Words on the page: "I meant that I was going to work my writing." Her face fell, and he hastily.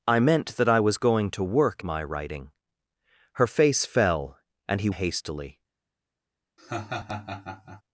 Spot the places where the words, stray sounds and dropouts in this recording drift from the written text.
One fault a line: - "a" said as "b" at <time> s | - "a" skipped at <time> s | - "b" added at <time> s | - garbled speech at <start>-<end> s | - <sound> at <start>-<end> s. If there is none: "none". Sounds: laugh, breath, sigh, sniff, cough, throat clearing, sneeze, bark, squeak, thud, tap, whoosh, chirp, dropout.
- laugh at 6.6-7.8 s